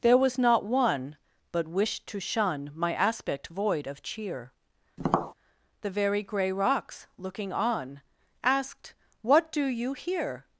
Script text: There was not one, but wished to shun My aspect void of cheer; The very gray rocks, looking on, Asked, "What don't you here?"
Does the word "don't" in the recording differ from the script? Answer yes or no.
yes